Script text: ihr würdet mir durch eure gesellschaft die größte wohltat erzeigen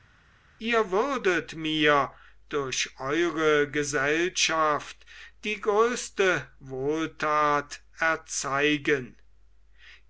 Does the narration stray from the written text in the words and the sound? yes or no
no